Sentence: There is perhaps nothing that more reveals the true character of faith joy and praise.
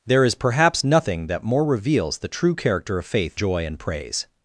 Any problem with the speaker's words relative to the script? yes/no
no